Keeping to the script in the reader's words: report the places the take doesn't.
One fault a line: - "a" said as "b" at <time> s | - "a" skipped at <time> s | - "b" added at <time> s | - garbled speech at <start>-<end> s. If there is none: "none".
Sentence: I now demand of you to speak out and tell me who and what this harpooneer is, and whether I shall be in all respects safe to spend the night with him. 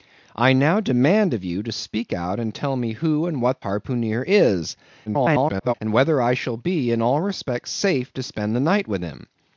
- "this" skipped at 3.6 s
- garbled speech at 5.1-5.7 s